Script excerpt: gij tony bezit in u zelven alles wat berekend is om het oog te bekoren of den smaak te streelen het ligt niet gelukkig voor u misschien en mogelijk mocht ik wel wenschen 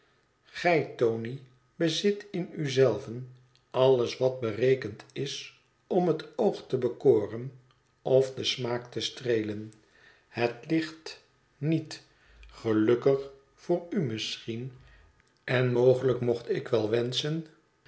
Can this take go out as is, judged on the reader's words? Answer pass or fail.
pass